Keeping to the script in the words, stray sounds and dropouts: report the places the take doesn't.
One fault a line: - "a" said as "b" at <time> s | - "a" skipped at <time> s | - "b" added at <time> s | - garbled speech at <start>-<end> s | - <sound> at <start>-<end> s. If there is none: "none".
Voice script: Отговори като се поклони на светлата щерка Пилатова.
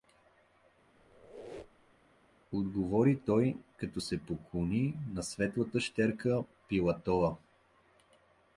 - squeak at 1.0-2.1 s
- "той" added at 3.3 s